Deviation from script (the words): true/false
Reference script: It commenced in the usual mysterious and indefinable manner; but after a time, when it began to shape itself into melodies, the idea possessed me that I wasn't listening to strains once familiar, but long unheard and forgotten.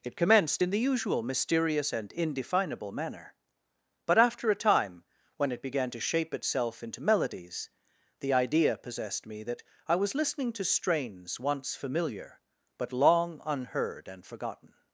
true